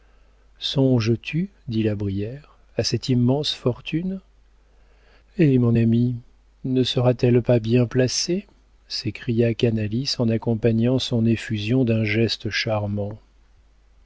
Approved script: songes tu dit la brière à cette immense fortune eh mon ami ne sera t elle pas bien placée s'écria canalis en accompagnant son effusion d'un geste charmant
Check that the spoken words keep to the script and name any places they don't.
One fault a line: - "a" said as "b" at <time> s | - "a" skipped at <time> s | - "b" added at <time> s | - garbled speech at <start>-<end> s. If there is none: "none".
none